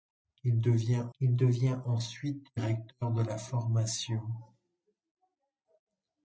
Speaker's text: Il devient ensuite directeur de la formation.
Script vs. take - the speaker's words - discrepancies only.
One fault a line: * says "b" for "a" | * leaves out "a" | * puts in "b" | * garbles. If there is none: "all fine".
* puts in "il devient"